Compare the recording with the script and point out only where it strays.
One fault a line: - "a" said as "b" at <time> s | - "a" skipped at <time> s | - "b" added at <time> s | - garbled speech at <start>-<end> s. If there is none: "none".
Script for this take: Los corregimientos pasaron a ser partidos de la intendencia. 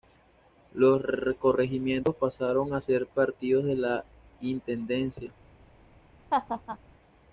none